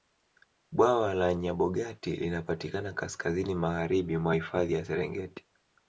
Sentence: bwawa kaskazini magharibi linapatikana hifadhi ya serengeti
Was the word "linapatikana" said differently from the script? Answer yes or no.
yes